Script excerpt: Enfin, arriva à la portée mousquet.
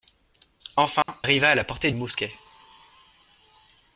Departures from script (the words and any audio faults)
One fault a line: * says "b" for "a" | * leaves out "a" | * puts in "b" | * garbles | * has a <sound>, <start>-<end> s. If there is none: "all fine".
* has a dropout, 1.0-1.1 s